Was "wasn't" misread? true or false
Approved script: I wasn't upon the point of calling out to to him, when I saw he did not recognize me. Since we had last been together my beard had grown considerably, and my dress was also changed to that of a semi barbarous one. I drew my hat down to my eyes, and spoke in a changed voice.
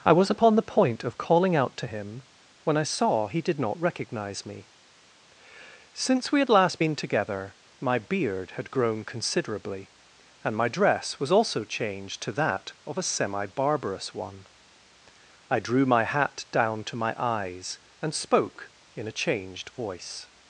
true